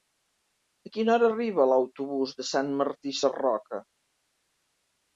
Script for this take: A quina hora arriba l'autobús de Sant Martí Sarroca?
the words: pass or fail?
pass